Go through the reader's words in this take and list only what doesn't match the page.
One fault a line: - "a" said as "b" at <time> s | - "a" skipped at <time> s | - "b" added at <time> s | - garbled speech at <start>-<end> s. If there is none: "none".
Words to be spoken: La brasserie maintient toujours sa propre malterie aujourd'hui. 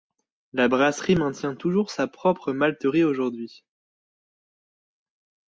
none